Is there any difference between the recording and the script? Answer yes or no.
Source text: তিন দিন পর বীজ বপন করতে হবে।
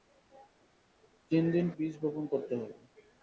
yes